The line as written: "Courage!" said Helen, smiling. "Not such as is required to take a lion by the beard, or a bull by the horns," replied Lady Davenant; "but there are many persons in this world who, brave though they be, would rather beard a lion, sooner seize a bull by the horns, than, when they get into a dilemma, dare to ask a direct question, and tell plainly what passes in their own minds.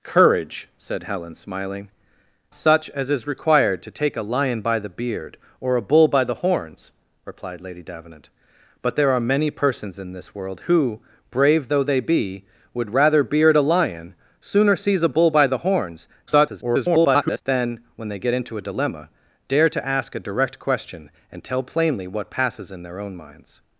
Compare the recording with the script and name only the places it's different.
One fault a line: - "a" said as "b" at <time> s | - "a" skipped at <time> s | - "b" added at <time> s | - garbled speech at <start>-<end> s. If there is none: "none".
- "Not" skipped at 1.9 s
- garbled speech at 16.3-17.4 s